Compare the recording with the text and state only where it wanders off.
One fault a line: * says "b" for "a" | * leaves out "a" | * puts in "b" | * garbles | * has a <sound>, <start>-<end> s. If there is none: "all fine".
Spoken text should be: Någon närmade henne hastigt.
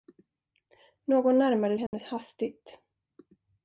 * has a dropout, 1.9-1.9 s